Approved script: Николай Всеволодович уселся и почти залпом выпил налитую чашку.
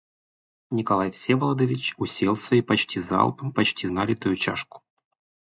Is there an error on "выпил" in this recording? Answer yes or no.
yes